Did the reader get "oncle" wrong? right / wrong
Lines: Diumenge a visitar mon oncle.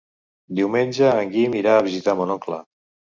right